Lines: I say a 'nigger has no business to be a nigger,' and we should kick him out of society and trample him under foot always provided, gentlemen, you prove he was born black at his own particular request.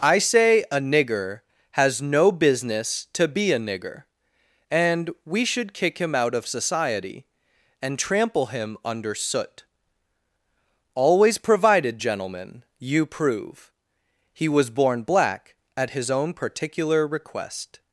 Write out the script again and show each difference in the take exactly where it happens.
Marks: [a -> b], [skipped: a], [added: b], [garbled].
I say a 'nigger has no business to be a nigger,' and we should kick him out of society and trample him under [foot -> soot] always provided, gentlemen, you prove he was born black at his own particular request.